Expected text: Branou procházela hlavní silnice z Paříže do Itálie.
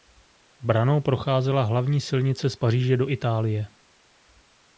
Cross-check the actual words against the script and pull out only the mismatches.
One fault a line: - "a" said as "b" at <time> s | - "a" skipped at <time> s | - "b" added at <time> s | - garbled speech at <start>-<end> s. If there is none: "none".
none